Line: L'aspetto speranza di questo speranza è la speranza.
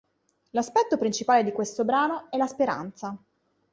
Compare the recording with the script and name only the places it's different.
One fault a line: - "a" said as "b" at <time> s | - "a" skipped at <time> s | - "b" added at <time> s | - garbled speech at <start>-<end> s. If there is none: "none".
- "speranza" said as "principale" at 1.0 s
- "speranza" said as "brano" at 1.9 s